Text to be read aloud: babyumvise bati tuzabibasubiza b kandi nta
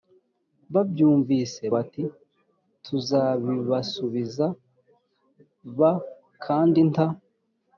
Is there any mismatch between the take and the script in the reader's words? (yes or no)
no